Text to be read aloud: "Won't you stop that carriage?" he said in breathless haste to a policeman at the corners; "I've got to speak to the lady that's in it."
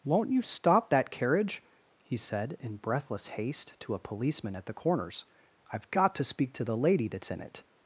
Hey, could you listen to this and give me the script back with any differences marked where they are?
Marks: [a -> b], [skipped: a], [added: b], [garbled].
"Won't you stop that carriage?" he said in breathless haste to a policeman at the corners; "I've got to speak to the lady that's in it."